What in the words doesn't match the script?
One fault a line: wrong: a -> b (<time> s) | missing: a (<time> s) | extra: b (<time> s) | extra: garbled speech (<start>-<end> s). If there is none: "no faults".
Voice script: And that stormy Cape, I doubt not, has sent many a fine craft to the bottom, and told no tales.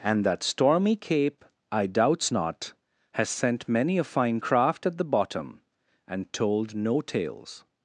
wrong: doubt -> doubts (1.9 s)
wrong: to -> at (4.9 s)